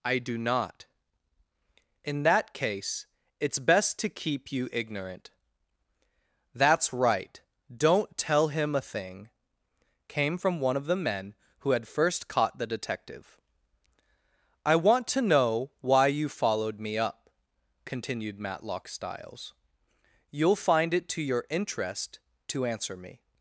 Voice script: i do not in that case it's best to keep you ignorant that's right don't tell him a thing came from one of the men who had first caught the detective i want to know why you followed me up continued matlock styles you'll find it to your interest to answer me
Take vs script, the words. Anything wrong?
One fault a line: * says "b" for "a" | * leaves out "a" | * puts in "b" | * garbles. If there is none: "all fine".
all fine